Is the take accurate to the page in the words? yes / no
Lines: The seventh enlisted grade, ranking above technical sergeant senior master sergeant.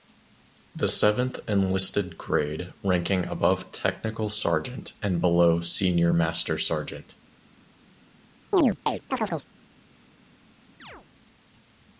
no